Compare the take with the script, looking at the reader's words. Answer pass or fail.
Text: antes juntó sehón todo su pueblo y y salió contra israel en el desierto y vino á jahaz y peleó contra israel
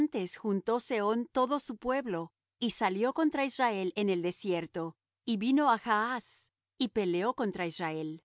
fail